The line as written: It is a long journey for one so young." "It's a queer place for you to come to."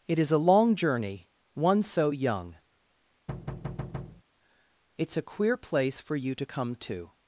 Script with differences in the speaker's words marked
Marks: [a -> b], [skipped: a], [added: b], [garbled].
It is a long journey [skipped: for] one so young." "It's a queer place for you to come to."